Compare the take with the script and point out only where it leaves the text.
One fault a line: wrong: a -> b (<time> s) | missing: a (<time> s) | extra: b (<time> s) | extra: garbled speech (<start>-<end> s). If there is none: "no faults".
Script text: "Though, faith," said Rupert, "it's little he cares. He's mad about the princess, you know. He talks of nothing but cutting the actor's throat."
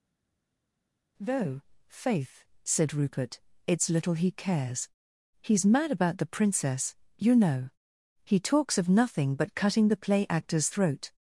extra: play (10.0 s)